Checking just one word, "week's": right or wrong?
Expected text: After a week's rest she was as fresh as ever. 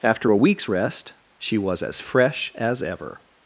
right